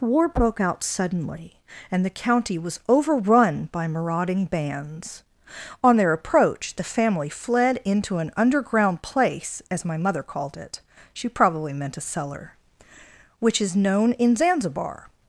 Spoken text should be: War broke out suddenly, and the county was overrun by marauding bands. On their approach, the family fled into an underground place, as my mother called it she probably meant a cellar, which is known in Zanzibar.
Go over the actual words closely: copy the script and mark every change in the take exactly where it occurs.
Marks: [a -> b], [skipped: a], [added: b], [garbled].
War broke out suddenly, and the county was overrun by marauding bands. On their approach, the family fled into an underground place, as my mother called it she probably meant a cellar, which is known in Zanzibar.